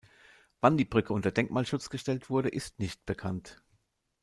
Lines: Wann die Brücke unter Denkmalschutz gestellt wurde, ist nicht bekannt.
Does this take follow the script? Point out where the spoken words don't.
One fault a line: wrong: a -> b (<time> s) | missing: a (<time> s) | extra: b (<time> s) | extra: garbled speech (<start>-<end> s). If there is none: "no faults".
no faults